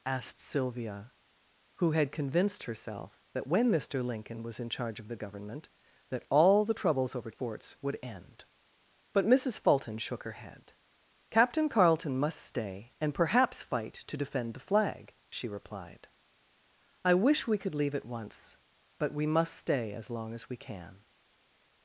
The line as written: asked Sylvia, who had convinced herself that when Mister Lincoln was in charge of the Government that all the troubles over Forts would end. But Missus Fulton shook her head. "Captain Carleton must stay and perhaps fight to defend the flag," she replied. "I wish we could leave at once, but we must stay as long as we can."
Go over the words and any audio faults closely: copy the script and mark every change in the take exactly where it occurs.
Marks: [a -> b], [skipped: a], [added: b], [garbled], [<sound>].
asked Sylvia, who had convinced herself that when Mister Lincoln was in charge of the Government that all the troubles over Forts would end. But Missus Fulton shook her head. "Captain Carleton must stay and perhaps fight to defend the flag," she replied. "I wish we could leave at once, but we must stay as long as we can."